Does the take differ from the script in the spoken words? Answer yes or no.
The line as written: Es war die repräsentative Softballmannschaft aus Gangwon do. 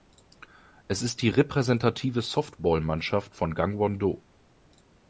yes